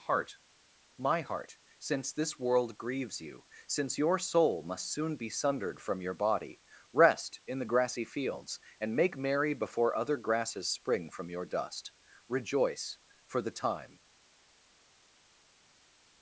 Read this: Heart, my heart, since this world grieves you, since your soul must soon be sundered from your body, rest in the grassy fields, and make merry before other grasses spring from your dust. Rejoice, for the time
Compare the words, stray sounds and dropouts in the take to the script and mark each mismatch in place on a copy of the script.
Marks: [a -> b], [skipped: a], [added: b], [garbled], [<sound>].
Heart, my heart, since this world grieves you, since your soul must soon be sundered from your body, rest in the grassy fields, and make merry before other grasses spring from your dust. Rejoice, for the time